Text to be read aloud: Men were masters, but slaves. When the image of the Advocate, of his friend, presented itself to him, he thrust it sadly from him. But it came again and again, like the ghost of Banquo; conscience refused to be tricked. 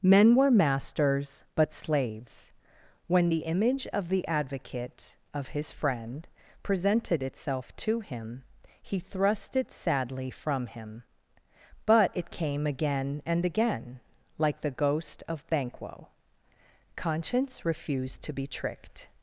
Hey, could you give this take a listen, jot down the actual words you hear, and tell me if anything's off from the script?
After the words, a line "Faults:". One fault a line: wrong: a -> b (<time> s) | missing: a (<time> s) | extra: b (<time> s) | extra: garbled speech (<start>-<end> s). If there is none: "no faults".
Men were masters, but slaves. When the image of the Advocate, of his friend, presented itself to him, he thrust it sadly from him. But it came again and again, like the ghost of Banquo; conscience refused to be tricked.
Faults:
no faults